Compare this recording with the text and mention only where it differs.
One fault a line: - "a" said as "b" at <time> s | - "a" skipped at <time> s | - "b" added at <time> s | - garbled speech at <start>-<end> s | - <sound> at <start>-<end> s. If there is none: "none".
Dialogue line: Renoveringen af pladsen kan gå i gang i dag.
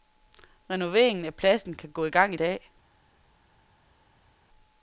none